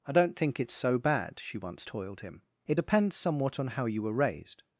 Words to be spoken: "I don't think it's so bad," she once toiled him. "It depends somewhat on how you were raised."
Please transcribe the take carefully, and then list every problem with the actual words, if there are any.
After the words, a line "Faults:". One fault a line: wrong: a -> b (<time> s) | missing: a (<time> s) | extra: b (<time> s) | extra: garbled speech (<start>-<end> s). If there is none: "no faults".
"I don't think it's so bad," she once toiled him. "It depends somewhat on how you were raised."
Faults:
no faults